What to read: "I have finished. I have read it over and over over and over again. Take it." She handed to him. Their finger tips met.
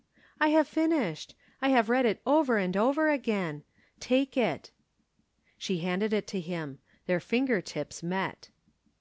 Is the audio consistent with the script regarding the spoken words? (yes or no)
no